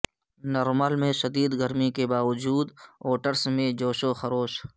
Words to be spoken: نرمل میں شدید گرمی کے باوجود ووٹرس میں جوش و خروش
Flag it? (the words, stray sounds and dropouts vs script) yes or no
no